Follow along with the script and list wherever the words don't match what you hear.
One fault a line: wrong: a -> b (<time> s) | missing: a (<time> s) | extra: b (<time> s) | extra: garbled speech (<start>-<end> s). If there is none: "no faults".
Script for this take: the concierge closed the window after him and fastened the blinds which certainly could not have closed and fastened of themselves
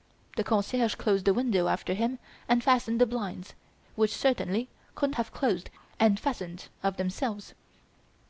missing: not (5.1 s)